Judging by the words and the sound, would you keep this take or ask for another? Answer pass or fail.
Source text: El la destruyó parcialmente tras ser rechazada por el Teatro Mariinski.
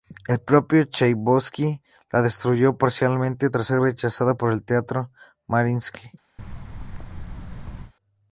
fail